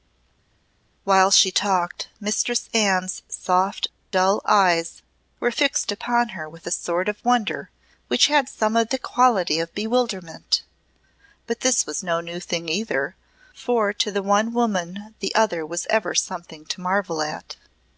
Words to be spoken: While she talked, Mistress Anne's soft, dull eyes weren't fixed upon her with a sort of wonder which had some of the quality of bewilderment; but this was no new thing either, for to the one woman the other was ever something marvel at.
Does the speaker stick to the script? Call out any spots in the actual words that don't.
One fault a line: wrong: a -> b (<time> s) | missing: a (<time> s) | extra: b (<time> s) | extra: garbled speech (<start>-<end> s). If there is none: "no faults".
wrong: weren't -> were (5.4 s)
extra: to (16.7 s)